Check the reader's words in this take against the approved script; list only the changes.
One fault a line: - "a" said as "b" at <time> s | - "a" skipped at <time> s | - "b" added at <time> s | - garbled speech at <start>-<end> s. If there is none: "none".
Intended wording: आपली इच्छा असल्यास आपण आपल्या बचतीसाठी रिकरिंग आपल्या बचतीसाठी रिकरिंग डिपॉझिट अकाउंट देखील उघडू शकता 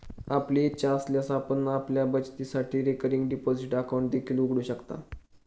- "आपल्या बचतीसाठी रिकरिंग" skipped at 3.3 s